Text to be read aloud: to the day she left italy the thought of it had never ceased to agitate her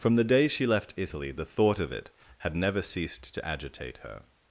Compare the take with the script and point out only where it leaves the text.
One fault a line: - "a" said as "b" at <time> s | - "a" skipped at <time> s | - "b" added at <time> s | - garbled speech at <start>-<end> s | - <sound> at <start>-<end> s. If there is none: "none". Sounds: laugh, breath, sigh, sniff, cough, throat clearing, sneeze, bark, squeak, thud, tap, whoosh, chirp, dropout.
- "to" said as "from" at 0.0 s